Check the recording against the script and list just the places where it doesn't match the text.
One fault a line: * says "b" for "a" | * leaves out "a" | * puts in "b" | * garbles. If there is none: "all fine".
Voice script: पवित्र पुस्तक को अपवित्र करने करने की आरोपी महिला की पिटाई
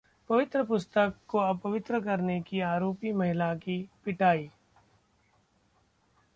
* leaves out "करने"